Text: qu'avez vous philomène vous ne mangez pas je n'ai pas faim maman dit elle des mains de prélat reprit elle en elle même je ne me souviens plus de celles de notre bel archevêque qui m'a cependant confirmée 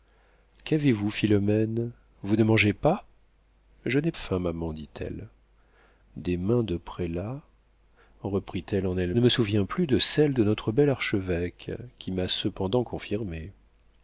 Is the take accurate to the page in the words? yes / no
no